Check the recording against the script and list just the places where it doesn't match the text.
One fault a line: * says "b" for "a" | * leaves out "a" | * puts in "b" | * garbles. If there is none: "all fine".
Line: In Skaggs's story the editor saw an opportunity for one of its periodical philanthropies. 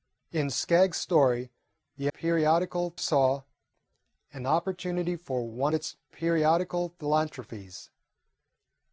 * says "periodical" for "editor"
* leaves out "of"